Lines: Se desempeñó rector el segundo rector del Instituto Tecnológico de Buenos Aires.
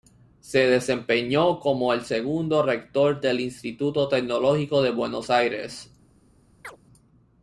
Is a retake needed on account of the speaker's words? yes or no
yes